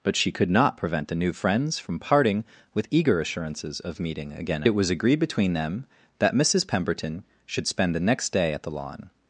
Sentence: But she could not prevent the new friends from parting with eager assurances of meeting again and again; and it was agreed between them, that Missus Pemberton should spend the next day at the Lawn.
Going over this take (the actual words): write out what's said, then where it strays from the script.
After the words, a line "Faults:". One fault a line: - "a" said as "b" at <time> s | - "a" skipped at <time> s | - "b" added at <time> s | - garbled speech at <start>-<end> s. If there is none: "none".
But she could not prevent the new friends from parting with eager assurances of meeting again it was agreed between them, that Missus Pemberton should spend the next day at the Lawn.
Faults:
- "and again and" skipped at 4.6 s